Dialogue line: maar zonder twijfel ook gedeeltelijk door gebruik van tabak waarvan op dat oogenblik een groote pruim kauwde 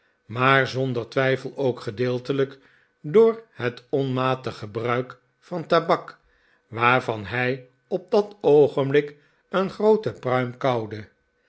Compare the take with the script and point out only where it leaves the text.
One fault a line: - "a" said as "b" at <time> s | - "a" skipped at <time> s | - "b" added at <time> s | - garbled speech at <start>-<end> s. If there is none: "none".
- "het onmatig" added at 3.5 s
- "hij" added at 7.2 s